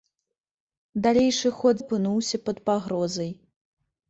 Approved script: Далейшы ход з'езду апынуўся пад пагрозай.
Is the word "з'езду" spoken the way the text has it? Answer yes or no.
no